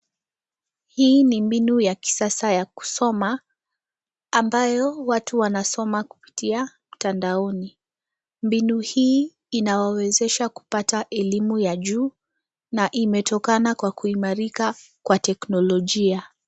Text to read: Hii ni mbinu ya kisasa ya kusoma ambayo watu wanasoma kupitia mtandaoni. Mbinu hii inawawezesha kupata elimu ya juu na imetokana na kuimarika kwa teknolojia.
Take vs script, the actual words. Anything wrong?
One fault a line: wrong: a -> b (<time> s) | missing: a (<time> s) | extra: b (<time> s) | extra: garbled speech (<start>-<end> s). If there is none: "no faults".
wrong: na -> kwa (13.8 s)